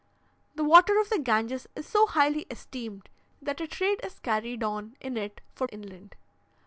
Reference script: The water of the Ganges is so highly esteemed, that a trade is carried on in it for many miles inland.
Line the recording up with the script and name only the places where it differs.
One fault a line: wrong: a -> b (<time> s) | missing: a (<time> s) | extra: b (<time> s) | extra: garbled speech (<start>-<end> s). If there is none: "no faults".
missing: many miles (5.7 s)